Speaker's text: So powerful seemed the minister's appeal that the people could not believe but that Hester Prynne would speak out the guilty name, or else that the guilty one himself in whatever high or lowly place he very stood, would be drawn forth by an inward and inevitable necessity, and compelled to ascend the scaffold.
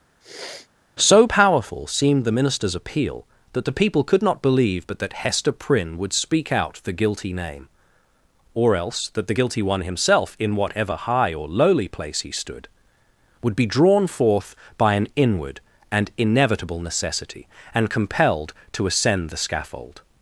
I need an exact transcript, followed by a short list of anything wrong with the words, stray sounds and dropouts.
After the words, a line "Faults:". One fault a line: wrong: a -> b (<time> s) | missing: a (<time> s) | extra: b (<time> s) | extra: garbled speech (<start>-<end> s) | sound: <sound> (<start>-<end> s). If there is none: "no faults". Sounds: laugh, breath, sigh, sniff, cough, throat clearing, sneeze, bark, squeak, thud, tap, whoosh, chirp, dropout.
So powerful seemed the minister's appeal that the people could not believe but that Hester Prynne would speak out the guilty name, or else that the guilty one himself in whatever high or lowly place he stood, would be drawn forth by an inward and inevitable necessity, and compelled to ascend the scaffold.
Faults:
sound: sniff (0.2-0.7 s)
missing: very (12.3 s)